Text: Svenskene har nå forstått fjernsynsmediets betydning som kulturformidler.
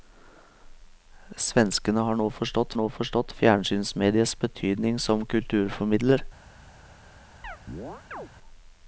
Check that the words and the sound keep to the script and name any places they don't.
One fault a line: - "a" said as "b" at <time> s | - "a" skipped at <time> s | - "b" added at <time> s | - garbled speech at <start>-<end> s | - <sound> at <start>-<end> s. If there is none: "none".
- "nå forstått" added at 2.8 s
- chirp at 7.4-8.3 s